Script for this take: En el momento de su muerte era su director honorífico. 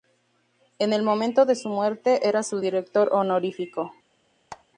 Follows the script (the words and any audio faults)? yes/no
no